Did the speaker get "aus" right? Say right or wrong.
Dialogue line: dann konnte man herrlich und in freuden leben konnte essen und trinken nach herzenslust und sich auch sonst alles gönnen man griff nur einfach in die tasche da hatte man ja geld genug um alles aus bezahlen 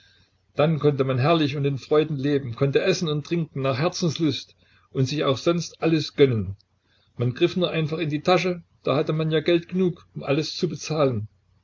wrong